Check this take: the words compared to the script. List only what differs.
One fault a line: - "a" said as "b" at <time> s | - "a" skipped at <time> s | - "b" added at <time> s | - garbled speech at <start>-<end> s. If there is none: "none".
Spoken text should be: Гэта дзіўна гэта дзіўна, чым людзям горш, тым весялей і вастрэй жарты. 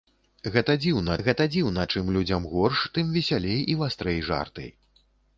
none